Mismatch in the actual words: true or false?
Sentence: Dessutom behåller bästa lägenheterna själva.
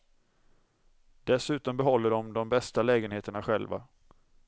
true